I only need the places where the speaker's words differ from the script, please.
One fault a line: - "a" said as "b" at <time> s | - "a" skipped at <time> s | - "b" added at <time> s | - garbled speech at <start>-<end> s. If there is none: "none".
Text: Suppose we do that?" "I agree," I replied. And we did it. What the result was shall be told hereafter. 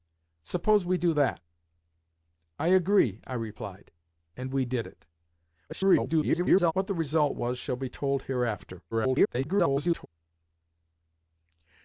- garbled speech at 5.7-6.7 s
- garbled speech at 8.9-10.1 s